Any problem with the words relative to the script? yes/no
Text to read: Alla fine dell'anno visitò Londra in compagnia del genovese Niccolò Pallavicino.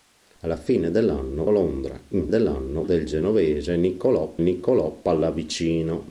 yes